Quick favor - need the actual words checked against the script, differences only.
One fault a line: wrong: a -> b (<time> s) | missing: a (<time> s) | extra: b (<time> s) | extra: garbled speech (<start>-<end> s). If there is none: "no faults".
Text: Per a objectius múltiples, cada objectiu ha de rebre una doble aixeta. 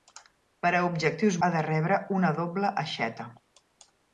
missing: múltiples cada objectiu (1.4 s)